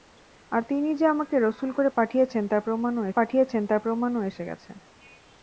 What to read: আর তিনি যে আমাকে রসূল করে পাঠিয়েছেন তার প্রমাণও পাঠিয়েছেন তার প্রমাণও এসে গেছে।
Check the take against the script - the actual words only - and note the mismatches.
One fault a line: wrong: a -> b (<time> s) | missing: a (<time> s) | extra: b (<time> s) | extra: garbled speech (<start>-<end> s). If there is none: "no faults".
no faults